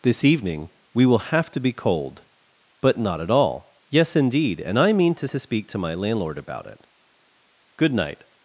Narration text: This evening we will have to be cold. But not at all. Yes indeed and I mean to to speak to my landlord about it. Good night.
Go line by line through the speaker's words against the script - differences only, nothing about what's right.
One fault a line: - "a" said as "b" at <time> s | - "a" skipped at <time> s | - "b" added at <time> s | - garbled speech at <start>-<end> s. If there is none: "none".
none